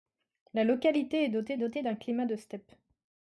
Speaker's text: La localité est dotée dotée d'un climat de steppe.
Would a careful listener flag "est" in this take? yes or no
no